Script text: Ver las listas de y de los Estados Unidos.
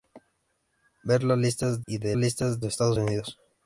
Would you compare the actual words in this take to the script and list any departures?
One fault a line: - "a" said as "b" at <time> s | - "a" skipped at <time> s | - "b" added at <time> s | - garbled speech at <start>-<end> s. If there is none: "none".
- "de" skipped at 1.8 s
- "los" said as "listas" at 2.2 s